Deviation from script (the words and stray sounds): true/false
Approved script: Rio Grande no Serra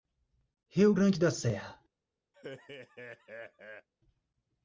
true